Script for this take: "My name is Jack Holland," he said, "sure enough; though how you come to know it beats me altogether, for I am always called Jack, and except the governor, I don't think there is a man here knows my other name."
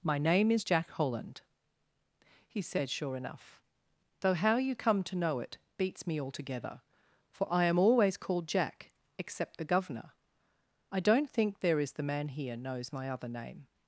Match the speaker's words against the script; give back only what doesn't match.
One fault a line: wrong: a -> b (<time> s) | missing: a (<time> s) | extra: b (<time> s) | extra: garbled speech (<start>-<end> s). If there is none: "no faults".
missing: and (8.9 s)
wrong: a -> the (11.9 s)